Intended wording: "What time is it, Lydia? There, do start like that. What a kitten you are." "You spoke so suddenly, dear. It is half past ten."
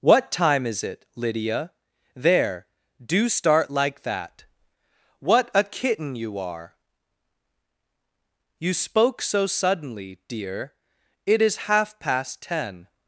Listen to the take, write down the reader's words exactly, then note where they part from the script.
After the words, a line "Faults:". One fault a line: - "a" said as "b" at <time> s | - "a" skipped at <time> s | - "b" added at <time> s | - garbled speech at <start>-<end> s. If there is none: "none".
"What time is it, Lydia? There, do start like that. What a kitten you are." "You spoke so suddenly, dear. It is half past ten."
Faults:
none